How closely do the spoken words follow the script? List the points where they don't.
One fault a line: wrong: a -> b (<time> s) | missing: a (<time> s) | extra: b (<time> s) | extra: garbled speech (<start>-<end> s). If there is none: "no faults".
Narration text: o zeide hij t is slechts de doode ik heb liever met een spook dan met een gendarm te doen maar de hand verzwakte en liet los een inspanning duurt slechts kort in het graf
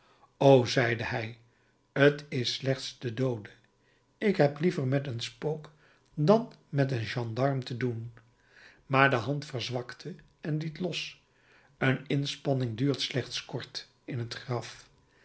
no faults